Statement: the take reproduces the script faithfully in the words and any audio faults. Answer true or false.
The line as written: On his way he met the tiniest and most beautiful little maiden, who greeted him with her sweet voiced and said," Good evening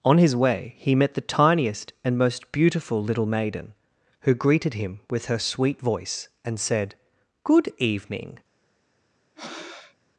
false